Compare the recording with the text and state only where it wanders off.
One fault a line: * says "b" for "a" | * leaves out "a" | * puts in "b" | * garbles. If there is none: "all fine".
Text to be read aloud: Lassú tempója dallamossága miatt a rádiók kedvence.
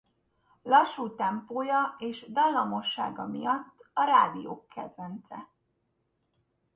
* puts in "és"